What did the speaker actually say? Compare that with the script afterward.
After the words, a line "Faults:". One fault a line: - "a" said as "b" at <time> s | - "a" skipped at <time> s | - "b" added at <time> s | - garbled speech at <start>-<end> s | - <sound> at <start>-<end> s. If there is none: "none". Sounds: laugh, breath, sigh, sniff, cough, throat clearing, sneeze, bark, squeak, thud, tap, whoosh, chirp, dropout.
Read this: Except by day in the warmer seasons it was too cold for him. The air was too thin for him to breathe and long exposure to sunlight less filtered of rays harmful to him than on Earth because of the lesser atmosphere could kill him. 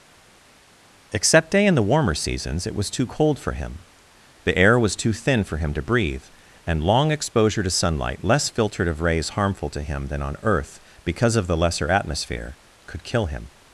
Except day in the warmer seasons it was too cold for him. The air was too thin for him to breathe and long exposure to sunlight less filtered of rays harmful to him than on Earth because of the lesser atmosphere could kill him.
Faults:
- "by" skipped at 1.5 s